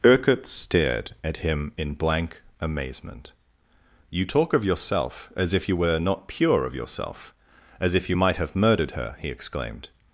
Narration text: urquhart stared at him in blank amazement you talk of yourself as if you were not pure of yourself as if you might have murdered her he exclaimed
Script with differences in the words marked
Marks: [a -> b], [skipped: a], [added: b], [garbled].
urquhart stared at him in blank amazement you talk of yourself as if you were not pure of yourself as if you might have murdered her he exclaimed